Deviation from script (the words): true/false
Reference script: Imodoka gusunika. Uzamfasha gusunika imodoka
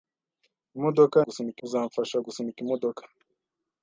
false